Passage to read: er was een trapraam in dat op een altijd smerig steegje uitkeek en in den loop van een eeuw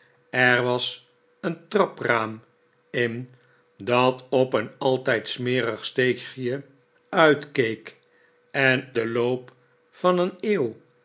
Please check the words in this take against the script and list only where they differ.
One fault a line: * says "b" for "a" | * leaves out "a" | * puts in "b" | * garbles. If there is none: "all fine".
* leaves out "in"